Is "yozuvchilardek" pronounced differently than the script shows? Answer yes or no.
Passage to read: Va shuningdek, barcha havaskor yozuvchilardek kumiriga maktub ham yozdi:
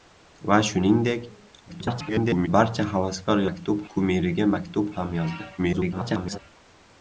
yes